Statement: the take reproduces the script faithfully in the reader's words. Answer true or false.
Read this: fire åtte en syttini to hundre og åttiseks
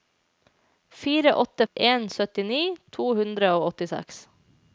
true